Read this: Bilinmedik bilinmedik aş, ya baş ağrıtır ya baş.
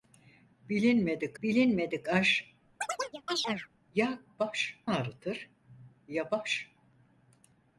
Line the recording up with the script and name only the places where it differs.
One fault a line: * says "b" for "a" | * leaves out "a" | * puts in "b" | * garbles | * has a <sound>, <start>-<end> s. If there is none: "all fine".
* has a chirp, 2.8-3.7 s